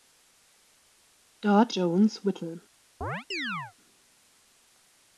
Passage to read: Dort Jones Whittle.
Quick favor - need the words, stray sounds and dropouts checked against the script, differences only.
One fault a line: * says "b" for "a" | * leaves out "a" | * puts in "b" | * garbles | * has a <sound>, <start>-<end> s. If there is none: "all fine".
* has a chirp, 3.0-3.7 s